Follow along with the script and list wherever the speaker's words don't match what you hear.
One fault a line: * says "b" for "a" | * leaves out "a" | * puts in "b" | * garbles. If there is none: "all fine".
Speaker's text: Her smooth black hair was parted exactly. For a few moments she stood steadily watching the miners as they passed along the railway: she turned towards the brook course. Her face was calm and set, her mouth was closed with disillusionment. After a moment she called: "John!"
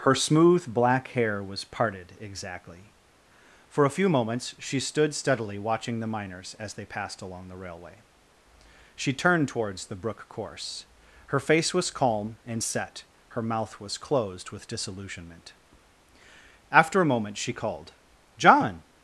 all fine